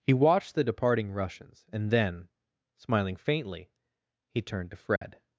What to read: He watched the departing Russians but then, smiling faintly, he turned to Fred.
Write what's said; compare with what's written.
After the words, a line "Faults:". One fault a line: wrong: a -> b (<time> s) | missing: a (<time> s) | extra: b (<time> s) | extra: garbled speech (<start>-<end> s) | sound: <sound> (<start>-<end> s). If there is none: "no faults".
He watched the departing Russians and then, smiling faintly, he turned to Fred.
Faults:
wrong: but -> and (1.7 s)
sound: dropout (5.0-5.0 s)